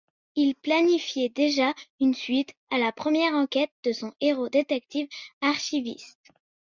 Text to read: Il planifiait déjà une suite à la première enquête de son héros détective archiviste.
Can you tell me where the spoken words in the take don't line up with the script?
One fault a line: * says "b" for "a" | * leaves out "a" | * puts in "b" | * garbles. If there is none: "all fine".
all fine